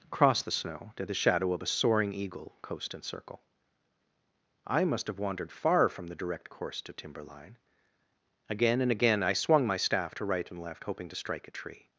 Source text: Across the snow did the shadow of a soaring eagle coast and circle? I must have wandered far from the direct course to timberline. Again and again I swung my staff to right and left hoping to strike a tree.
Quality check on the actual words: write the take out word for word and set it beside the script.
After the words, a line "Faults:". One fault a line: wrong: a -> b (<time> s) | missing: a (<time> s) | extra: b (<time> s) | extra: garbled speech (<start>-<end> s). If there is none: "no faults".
Across the snow did the shadow of a soaring eagle coast and circle? I must have wandered far from the direct course to timberline. Again and again I swung my staff to right and left hoping to strike a tree.
Faults:
no faults